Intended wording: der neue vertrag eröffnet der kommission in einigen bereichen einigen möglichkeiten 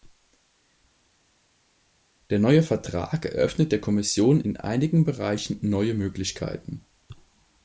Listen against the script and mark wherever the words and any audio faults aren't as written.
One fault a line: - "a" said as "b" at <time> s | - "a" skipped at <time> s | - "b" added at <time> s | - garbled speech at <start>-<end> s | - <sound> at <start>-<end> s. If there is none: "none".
- "einigen" said as "neue" at 5.6 s